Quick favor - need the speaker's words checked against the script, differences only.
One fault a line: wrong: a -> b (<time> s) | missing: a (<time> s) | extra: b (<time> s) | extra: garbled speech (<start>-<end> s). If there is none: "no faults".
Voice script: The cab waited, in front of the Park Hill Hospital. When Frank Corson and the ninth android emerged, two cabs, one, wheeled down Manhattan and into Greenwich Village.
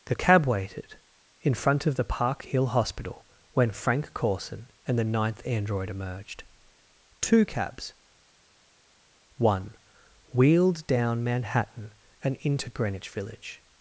no faults